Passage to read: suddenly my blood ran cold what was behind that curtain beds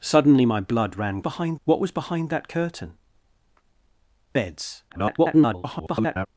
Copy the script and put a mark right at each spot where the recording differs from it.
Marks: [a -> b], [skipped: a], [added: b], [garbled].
suddenly my blood ran [cold -> behind] what was behind that curtain beds [garbled]